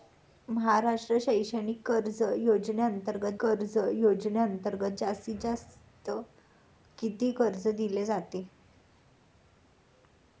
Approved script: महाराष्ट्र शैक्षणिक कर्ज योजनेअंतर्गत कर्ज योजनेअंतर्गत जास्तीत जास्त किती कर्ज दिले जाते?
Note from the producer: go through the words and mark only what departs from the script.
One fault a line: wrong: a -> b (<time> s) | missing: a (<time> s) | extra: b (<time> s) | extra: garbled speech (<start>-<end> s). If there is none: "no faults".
no faults